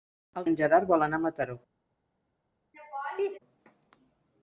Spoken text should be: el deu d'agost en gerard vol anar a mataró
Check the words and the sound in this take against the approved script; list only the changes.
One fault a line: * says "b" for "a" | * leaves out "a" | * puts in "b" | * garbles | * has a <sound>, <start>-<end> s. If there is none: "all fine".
* leaves out "deu d'agost"
* has a laugh, 2.7-3.4 s